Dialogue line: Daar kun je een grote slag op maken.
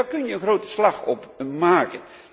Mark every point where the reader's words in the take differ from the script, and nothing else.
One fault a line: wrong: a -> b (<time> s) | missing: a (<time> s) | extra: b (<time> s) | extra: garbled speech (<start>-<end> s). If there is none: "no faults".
no faults